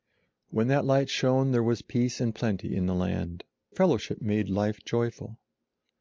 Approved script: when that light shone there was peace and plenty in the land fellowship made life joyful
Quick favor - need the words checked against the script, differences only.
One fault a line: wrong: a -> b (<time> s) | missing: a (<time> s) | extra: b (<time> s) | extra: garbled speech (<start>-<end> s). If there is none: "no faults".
no faults